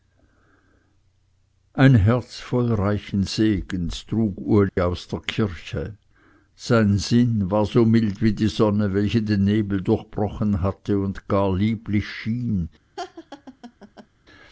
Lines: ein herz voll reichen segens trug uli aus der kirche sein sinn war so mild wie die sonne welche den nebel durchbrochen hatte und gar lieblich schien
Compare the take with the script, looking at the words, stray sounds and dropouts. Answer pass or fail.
fail